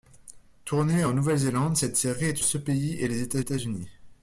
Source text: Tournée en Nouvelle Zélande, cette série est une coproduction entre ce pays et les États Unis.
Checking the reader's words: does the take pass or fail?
fail